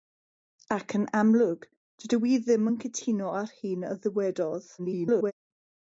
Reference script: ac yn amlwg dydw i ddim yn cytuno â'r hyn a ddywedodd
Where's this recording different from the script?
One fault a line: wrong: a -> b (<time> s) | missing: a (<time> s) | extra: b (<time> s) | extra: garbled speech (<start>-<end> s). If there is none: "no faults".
extra: garbled speech (4.8-5.3 s)